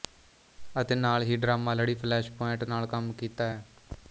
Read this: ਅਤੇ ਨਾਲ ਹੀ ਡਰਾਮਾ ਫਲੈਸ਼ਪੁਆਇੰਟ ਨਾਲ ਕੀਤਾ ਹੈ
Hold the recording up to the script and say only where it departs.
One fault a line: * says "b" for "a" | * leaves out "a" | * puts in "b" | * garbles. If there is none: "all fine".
* puts in "ਲੜੀ"
* puts in "ਕੰਮ"